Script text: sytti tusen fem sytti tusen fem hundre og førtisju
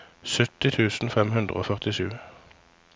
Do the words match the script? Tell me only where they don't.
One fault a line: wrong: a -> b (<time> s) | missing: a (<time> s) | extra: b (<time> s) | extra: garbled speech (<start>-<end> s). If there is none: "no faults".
missing: sytti tusen fem (1.3 s)